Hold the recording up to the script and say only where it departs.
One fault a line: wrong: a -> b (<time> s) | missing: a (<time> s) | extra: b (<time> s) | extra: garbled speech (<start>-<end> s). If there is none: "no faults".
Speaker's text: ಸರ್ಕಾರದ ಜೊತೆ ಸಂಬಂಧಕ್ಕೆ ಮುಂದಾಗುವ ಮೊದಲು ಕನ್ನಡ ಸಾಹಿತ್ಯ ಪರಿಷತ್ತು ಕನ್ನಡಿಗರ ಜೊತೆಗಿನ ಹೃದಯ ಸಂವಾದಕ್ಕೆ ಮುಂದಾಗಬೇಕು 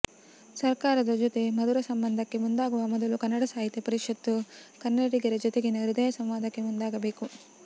extra: ಮಧುರ (1.6 s)